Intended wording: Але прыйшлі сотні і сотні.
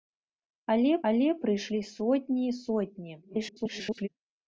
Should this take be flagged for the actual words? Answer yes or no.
yes